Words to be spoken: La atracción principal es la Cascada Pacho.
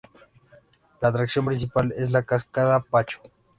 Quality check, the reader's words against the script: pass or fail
pass